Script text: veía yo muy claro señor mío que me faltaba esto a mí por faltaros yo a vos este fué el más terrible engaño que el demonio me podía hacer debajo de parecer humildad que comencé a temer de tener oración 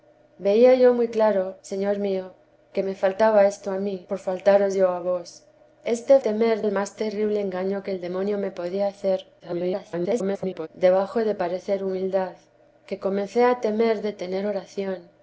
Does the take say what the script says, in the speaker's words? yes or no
no